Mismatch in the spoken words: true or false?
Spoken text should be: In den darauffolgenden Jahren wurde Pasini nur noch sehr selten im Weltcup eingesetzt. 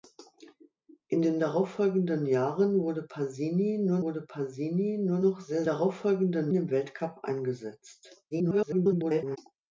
true